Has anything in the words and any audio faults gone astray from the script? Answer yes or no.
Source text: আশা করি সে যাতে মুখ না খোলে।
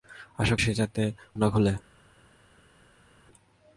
yes